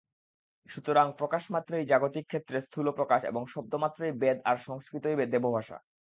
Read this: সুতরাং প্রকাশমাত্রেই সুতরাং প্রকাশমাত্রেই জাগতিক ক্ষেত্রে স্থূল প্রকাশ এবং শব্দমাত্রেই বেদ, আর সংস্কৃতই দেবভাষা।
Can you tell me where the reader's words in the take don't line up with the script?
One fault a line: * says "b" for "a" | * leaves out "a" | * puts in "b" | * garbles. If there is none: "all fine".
* leaves out "সুতরাং প্রকাশমাত্রেই"